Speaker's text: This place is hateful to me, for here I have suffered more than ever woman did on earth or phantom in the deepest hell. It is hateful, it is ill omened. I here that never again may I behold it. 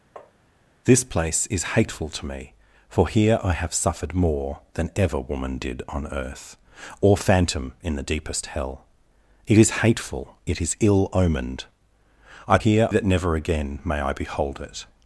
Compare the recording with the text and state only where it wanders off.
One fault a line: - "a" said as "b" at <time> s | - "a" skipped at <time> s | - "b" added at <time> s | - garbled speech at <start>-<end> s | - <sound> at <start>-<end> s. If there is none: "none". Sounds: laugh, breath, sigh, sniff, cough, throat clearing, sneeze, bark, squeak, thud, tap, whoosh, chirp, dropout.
- tap at 0.2-0.3 s